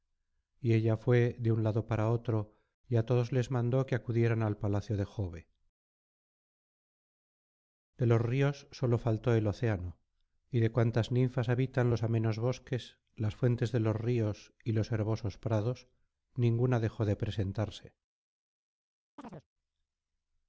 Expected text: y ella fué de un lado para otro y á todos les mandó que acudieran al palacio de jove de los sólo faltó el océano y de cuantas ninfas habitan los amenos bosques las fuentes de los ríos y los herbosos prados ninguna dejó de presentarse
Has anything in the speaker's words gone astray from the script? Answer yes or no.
yes